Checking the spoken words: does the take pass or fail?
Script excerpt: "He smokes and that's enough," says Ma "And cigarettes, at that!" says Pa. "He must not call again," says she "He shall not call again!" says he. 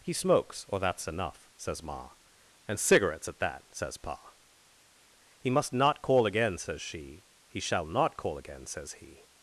fail